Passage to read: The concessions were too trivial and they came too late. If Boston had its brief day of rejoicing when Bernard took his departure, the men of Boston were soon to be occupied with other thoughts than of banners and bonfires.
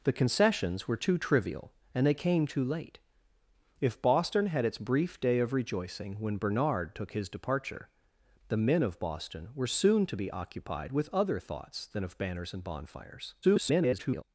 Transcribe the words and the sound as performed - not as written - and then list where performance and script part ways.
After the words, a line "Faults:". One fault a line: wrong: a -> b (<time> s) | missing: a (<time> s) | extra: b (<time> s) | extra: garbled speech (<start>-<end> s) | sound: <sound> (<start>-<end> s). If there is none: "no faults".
The concessions were too trivial and they came too late. If Boston had its brief day of rejoicing when Bernard took his departure, the men of Boston were soon to be occupied with other thoughts than of banners and bonfires. [garbled]
Faults:
extra: garbled speech (13.4-14.2 s)